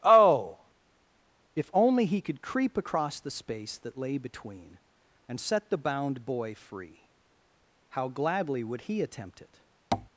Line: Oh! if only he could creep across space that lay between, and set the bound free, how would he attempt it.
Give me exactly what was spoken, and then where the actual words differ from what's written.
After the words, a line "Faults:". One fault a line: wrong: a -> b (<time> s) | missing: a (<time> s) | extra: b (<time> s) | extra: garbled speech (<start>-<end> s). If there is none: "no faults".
Oh! if only he could creep across the space that lay between, and set the bound boy free, how gladly would he attempt it.
Faults:
extra: the (3.2 s)
extra: boy (6.2 s)
extra: gladly (8.1 s)